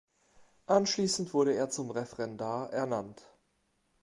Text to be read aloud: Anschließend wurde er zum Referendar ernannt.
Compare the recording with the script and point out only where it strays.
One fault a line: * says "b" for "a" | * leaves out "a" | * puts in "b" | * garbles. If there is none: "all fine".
all fine